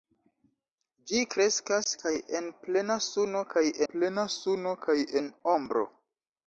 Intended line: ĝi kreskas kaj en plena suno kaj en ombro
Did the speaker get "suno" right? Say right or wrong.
right